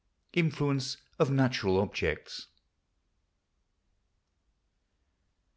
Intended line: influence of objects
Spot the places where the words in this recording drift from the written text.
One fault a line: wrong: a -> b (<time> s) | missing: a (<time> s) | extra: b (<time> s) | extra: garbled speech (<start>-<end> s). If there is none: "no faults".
extra: natural (1.3 s)